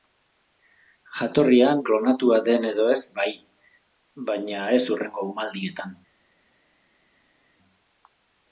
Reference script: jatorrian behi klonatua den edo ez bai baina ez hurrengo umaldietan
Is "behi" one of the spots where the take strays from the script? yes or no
yes